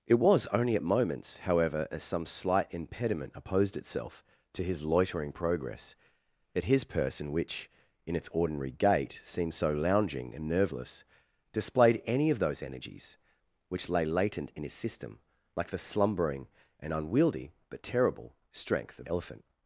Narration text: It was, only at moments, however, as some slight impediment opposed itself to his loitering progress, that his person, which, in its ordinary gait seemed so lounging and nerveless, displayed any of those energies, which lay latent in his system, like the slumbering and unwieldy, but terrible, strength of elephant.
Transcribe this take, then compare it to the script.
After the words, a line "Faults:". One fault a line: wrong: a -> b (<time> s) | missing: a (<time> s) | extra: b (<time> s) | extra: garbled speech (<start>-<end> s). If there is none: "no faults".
It was, only at moments, however, as some slight impediment opposed itself to his loitering progress, that his person, which, in its ordinary gait seemed so lounging and nerveless, displayed any of those energies, which lay latent in his system, like the slumbering and unwieldy, but terrible, strength of elephant.
Faults:
no faults